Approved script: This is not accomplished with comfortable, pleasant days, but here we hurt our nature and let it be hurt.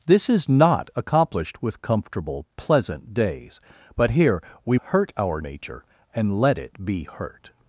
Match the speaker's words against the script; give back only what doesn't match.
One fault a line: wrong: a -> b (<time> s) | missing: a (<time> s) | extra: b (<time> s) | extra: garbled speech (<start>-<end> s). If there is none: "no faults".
no faults